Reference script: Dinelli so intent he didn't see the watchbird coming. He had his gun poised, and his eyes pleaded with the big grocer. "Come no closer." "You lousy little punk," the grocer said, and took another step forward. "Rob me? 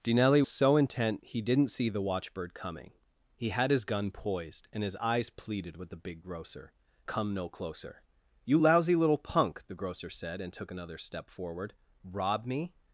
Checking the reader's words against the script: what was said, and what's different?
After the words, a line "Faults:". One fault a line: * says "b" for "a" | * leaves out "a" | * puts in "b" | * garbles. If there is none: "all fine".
Dinelli so intent he didn't see the watchbird coming. He had his gun poised, and his eyes pleaded with the big grocer. "Come no closer." "You lousy little punk," the grocer said, and took another step forward. "Rob me?
Faults:
all fine